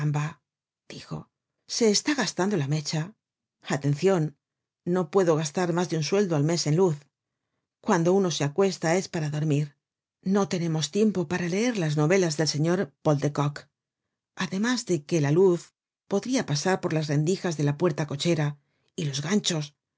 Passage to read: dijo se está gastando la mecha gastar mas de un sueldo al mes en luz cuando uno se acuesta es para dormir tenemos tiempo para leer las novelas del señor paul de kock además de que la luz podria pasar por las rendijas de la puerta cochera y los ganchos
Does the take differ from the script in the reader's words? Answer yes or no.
yes